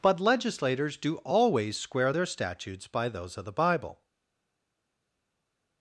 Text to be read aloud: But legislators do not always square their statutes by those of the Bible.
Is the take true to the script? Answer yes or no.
no